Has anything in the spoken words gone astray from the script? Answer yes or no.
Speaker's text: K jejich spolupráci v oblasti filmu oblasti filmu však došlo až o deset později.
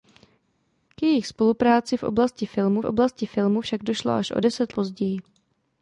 no